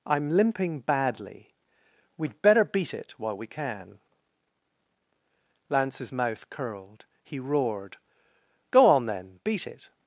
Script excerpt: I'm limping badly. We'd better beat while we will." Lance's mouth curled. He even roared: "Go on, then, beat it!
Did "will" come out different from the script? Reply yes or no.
yes